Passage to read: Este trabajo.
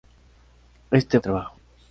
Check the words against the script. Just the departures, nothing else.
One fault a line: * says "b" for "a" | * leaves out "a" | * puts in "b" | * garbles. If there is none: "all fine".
all fine